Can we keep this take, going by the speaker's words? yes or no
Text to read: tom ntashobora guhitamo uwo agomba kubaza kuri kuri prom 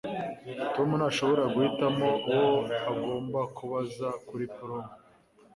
no